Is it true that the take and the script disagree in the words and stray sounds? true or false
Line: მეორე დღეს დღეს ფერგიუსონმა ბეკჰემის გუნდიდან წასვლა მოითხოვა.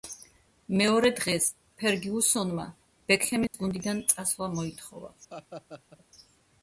true